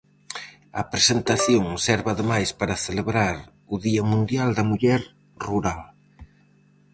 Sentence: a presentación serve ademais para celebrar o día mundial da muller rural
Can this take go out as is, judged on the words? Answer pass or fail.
pass